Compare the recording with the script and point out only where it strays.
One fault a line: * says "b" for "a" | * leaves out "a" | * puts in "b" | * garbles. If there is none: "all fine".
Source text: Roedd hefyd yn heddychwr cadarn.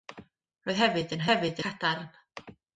* says "hefyd" for "heddychwr"